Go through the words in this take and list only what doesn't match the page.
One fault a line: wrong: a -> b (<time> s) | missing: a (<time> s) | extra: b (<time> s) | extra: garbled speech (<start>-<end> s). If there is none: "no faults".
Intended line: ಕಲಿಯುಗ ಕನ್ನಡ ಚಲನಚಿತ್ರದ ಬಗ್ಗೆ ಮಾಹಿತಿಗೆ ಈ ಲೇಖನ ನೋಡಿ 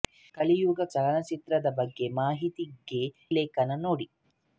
missing: ಕನ್ನಡ (0.8 s)
missing: ಈ (3.0 s)